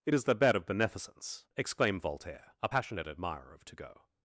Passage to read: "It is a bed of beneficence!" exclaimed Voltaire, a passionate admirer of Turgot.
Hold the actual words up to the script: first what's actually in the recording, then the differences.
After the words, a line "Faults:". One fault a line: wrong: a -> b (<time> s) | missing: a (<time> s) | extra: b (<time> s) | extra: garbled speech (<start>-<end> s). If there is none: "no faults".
"It is the bed of beneficence!" exclaimed Voltaire, a passionate admirer of Turgot.
Faults:
wrong: a -> the (0.2 s)